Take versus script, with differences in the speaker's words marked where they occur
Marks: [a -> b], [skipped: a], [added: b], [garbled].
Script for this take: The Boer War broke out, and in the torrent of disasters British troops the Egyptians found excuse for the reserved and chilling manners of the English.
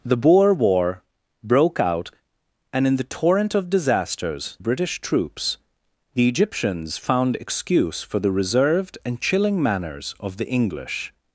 The Boer War broke out, and in the torrent of disasters British troops the Egyptians found excuse for the reserved and chilling manners of the English.